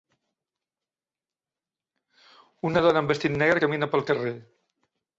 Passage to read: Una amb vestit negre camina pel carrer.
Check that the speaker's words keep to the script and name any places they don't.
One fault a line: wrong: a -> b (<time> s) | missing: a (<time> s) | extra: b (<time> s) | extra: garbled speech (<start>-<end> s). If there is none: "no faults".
extra: dona (2.9 s)